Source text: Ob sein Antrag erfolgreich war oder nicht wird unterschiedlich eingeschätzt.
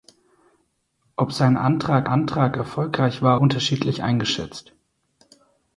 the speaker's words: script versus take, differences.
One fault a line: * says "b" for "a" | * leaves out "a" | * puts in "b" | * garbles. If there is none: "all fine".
* puts in "Antrag"
* leaves out "oder nicht wird"